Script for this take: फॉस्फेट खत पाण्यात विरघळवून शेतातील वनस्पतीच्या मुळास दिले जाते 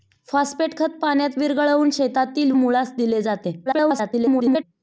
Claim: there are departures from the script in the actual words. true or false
true